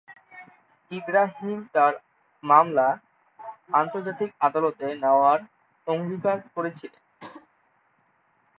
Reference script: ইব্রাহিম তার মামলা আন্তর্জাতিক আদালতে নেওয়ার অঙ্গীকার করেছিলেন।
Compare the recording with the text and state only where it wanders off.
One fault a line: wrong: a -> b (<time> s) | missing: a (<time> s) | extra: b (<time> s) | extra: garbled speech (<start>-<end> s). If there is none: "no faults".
no faults